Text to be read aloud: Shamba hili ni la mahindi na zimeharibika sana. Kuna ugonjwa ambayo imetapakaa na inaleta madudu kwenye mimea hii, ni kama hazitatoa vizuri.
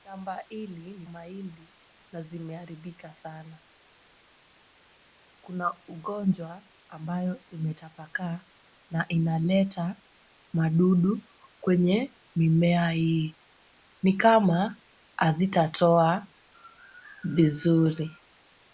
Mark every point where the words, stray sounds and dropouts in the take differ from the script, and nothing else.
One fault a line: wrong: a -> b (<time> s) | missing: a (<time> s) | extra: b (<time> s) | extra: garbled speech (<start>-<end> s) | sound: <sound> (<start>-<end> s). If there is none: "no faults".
missing: la (1.1 s)